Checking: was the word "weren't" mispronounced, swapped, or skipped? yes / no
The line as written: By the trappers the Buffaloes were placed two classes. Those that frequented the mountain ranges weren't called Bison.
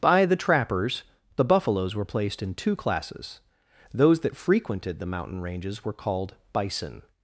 yes